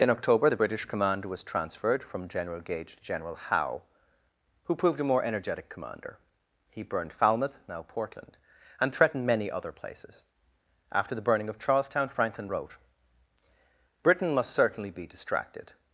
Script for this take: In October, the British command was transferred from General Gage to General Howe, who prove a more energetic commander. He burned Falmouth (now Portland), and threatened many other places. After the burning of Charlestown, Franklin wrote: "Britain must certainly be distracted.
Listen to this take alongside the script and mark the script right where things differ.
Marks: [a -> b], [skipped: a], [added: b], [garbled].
In October, the British command was transferred from General Gage to General Howe, who [prove -> proved] a more energetic commander. He burned Falmouth (now Portland), and threatened many other places. After the burning of Charlestown, Franklin wrote: "Britain must certainly be distracted.